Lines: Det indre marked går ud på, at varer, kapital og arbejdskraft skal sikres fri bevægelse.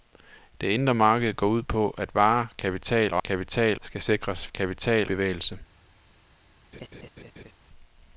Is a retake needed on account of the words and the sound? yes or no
yes